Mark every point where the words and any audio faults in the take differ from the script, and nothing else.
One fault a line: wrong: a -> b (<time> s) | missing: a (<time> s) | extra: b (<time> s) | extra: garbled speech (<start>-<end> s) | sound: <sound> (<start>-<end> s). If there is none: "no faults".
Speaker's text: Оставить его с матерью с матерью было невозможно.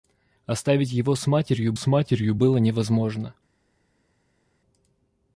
no faults